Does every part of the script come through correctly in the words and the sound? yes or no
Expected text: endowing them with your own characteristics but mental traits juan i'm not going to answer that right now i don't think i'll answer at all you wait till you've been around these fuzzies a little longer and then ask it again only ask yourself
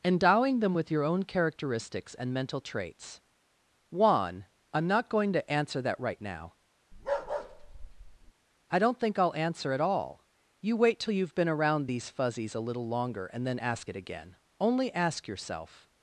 no